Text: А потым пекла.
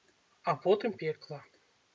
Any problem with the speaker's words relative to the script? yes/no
no